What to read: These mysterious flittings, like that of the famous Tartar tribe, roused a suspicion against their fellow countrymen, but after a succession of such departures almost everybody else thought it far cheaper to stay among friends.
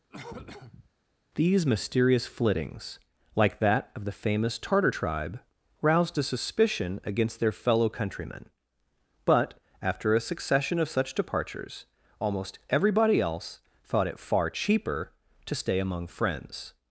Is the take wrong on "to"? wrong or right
right